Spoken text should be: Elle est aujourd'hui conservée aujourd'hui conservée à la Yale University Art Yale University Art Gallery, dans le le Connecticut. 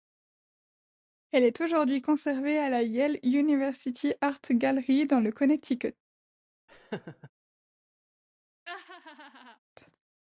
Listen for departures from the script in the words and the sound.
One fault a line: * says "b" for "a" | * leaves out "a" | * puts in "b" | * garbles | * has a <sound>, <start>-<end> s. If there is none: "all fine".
* leaves out "aujourd'hui conservée"
* leaves out "Yale University Art"
* leaves out "le"
* has a laugh, 6.7-7.3 s
* has a laugh, 8.7-9.6 s